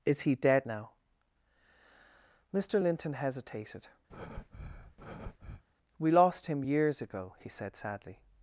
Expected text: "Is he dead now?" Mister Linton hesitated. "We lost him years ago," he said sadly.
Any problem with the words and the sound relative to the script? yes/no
yes